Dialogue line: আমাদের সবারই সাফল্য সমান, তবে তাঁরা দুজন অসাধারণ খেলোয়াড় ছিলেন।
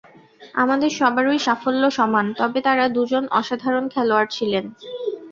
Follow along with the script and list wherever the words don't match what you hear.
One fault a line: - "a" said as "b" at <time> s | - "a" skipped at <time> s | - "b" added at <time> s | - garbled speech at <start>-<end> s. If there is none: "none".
none